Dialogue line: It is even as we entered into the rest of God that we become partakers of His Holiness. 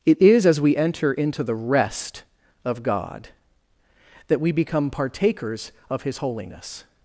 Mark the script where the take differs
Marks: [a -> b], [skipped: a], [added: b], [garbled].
It is [skipped: even] as we [entered -> enter] into the rest of God that we become partakers of His Holiness.